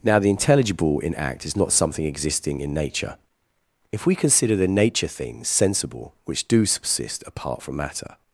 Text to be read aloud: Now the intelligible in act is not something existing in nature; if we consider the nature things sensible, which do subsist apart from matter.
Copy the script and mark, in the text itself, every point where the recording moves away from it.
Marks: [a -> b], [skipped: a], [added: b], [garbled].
Now the intelligible in act is not something existing in nature; if we consider the nature things sensible, which do subsist apart from matter.